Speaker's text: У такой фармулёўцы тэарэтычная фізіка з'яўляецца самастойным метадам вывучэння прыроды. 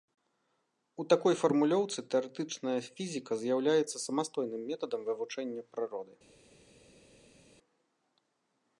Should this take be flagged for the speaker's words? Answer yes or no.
no